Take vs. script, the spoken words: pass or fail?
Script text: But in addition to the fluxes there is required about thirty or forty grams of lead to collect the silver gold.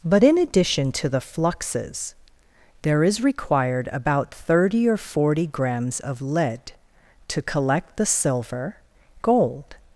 pass